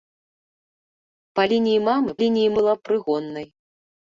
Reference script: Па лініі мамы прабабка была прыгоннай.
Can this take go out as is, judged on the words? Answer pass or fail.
fail